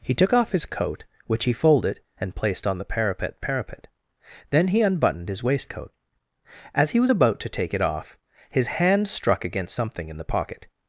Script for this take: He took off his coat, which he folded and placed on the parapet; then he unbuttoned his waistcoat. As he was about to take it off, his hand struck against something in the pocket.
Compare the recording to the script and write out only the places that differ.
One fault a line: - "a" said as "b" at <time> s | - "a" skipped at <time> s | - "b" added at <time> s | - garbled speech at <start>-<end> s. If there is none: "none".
- "parapet" added at 3.4 s